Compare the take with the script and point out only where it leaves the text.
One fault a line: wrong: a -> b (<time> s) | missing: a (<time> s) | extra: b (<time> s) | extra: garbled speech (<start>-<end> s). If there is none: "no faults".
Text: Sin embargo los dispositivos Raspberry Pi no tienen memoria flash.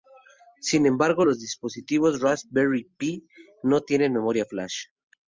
no faults